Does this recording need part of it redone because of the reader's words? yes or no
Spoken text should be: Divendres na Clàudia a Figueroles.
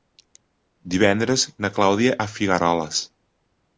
no